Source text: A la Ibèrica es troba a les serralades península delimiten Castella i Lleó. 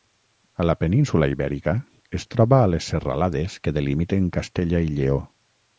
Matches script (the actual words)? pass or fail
fail